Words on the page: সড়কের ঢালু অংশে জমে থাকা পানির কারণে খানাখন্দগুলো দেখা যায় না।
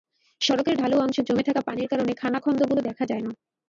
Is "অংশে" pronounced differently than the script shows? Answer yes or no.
no